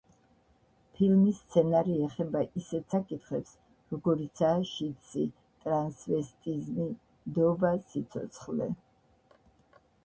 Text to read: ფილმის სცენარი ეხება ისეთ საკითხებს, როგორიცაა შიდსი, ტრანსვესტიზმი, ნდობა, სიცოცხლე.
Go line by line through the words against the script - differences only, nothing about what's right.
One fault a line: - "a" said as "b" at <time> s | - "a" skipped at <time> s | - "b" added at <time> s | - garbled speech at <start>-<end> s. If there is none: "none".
none